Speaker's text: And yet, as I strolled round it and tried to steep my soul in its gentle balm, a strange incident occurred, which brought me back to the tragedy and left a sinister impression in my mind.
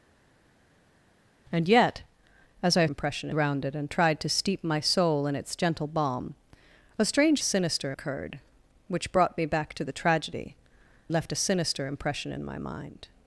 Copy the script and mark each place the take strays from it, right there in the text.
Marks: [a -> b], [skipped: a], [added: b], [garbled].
And yet, as I [strolled -> impression] round it and tried to steep my soul in its gentle balm, a strange [incident -> sinister] occurred, which brought me back to the tragedy [skipped: and] left a sinister impression in my mind.